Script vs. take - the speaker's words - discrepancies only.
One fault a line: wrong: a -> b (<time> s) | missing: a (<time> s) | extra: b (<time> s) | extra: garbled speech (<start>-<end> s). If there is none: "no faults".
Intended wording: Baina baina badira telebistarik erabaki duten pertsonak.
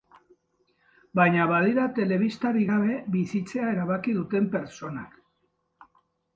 missing: baina (1.4 s)
extra: gabe bizitzea (2.7 s)